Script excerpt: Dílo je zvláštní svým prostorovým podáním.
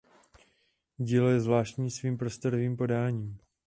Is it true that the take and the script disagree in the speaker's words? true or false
false